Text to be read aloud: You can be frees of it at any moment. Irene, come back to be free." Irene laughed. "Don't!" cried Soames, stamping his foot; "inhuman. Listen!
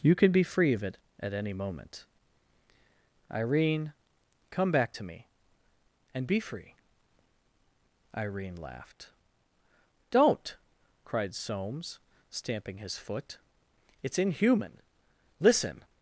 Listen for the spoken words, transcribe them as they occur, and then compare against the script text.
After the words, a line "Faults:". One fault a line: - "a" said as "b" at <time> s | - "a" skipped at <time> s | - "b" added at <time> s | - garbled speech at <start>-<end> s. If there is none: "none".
You can be free of it at any moment. Irene, come back to me, and be free." Irene laughed. "Don't!" cried Soames, stamping his foot; "it's inhuman. Listen!
Faults:
- "frees" said as "free" at 0.4 s
- "me and" added at 5.0 s
- "it's" added at 14.0 s